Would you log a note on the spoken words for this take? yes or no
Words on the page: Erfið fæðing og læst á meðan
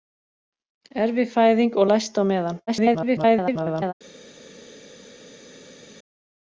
yes